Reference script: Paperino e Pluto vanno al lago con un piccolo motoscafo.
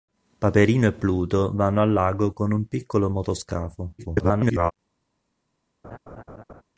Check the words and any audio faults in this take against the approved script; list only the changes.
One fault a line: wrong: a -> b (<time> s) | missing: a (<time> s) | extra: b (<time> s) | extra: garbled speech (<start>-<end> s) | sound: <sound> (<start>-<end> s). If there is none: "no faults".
extra: garbled speech (4.0-4.7 s)
sound: laugh (5.8-6.6 s)